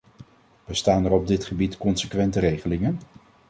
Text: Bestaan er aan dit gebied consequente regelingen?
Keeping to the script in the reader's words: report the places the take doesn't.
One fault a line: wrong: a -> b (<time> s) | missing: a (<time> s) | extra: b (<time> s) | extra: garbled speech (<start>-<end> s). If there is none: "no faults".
wrong: aan -> op (1.1 s)